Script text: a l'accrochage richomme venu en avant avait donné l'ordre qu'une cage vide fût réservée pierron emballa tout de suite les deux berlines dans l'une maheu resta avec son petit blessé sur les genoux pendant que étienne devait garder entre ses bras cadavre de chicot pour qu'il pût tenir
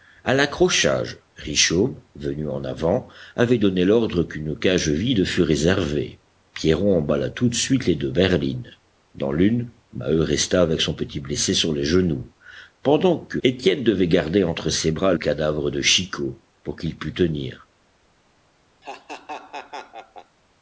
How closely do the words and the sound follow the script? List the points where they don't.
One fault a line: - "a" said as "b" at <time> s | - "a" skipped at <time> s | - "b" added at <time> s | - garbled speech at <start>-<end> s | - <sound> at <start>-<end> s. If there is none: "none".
- laugh at 18.8-20.4 s